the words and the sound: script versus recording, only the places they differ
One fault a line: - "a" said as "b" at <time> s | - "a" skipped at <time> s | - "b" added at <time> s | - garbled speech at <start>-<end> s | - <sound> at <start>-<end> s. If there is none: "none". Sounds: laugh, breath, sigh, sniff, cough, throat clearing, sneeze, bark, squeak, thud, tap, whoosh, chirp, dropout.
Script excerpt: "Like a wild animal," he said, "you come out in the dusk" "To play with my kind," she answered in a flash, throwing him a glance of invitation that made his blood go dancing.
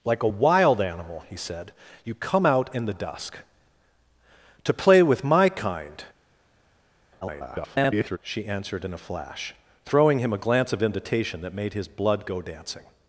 - garbled speech at 7.2-8.2 s